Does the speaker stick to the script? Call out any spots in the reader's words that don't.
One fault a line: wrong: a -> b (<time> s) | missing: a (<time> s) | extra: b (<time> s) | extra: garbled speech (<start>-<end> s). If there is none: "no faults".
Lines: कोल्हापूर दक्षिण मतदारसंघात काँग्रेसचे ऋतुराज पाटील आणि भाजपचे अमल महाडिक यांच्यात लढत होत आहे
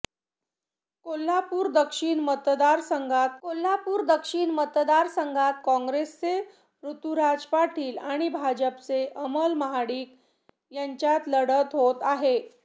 extra: कोल्हापूर दक्षिण मतदारसंघात (3.4 s)